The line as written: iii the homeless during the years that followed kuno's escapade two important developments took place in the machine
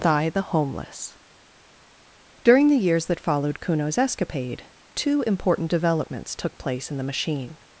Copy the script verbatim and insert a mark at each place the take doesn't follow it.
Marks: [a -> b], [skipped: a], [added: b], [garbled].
[iii -> thigh] the homeless during the years that followed kuno's escapade two important developments took place in the machine